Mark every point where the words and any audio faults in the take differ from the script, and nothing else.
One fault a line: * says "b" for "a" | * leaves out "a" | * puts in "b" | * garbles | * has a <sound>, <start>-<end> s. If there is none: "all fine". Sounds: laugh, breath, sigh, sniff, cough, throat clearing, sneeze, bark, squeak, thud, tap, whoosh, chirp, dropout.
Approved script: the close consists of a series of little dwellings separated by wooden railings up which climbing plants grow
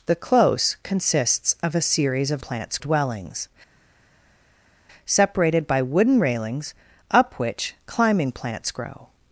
* says "plants" for "little"